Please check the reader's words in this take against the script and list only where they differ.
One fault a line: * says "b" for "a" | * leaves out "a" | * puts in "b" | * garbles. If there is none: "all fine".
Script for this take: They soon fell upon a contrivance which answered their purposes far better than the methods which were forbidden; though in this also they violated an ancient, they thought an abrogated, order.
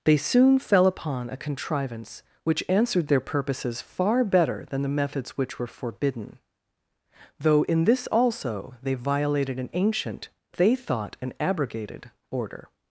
all fine